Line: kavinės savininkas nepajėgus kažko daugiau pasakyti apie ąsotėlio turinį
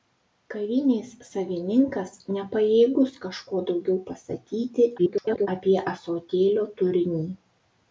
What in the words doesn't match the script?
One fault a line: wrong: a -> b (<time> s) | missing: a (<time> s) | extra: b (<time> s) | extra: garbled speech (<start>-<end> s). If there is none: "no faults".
extra: garbled speech (5.0-5.5 s)